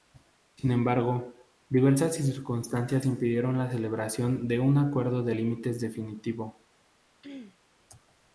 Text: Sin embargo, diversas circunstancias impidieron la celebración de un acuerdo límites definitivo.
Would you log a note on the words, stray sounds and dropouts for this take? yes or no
yes